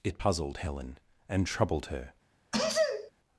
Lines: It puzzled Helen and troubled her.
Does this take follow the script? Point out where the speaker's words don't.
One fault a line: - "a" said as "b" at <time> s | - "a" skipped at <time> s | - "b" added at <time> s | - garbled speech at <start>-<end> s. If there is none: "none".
none